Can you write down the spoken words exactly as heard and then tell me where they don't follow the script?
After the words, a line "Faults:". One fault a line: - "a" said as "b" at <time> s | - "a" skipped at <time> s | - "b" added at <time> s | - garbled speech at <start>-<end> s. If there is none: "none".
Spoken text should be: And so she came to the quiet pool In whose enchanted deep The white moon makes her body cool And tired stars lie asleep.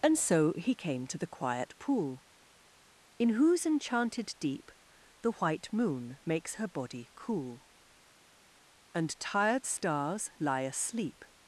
And so he came to the quiet pool In whose enchanted deep The white moon makes her body cool And tired stars lie asleep.
Faults:
- "she" said as "he" at 0.5 s